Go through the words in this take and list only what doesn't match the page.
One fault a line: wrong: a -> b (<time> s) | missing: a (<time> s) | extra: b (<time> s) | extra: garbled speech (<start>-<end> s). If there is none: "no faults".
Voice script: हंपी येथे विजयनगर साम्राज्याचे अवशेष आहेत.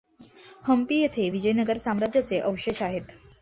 no faults